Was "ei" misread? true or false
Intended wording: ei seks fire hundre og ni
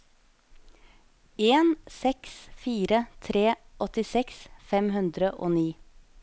true